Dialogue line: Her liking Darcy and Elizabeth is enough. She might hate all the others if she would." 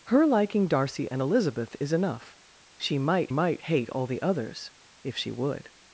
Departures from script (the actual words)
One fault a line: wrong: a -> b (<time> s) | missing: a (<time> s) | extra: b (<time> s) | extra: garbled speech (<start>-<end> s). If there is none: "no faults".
extra: might (3.3 s)